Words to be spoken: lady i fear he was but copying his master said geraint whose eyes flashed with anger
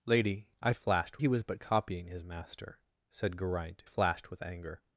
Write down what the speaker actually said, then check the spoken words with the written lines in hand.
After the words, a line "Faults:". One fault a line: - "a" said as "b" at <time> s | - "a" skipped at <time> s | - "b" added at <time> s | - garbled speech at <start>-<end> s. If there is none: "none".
lady i flashed he was but copying his master said geraint flashed with anger
Faults:
- "fear" said as "flashed" at 0.7 s
- "whose eyes" skipped at 3.8 s